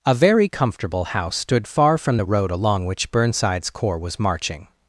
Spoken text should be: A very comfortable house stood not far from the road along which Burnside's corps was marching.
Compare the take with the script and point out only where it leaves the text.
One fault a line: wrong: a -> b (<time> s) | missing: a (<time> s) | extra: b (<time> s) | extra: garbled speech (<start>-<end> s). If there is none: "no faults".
missing: not (1.7 s)